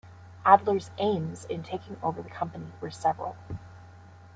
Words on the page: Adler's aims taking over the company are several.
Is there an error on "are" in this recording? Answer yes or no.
yes